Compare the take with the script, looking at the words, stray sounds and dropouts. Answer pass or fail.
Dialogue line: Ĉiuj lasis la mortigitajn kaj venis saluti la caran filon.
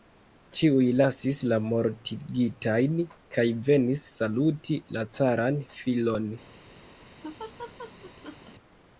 fail